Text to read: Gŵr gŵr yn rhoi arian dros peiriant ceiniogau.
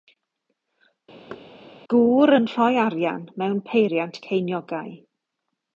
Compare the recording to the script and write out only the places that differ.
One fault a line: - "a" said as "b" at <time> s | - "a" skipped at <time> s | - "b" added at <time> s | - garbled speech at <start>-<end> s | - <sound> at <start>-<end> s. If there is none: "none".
- thud at 1.3-1.5 s
- "gŵr" skipped at 2.3 s
- "dros" said as "mewn" at 3.4 s